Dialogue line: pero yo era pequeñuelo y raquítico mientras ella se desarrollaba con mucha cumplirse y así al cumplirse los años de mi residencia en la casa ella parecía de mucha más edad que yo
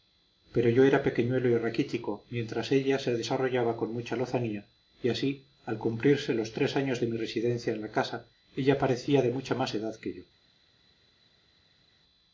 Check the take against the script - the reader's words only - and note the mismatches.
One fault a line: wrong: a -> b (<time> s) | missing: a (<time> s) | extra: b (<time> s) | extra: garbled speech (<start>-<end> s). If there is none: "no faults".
wrong: cumplirse -> lozanía (4.2 s)
extra: tres (6.5 s)